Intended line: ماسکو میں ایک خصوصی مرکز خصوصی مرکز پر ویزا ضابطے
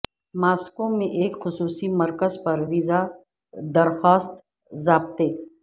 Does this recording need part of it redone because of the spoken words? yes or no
yes